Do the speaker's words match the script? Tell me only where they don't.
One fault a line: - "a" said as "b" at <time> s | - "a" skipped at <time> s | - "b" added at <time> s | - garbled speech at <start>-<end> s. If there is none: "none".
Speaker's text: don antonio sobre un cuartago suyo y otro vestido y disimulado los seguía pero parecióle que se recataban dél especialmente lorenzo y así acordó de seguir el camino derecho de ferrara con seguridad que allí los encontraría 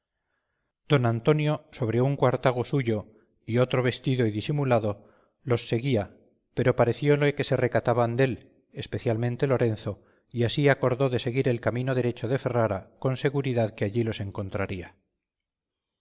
none